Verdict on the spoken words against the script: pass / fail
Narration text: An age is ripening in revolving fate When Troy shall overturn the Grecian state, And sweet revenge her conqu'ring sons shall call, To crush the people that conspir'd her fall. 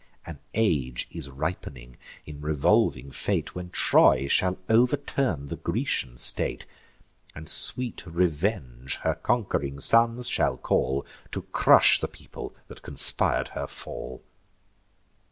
pass